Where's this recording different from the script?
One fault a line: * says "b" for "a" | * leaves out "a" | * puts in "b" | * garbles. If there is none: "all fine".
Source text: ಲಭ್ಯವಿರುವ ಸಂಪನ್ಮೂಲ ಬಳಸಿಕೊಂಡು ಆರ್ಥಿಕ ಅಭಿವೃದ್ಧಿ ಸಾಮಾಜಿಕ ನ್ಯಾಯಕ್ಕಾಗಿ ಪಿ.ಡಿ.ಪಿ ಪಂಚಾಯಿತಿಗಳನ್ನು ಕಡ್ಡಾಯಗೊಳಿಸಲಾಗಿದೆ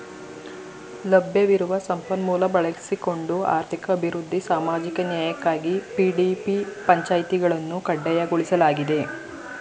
all fine